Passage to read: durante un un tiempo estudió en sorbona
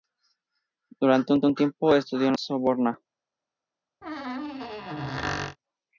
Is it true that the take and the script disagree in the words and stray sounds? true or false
true